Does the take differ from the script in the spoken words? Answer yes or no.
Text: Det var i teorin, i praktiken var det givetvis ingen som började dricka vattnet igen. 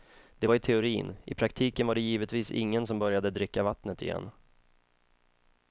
no